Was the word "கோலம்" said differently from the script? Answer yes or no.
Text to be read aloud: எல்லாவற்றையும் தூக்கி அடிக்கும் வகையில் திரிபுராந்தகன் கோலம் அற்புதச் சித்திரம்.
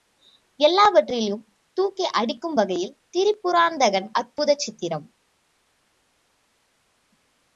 yes